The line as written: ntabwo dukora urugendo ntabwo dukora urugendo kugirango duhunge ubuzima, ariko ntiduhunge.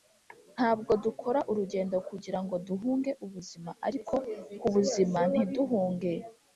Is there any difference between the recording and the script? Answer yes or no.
yes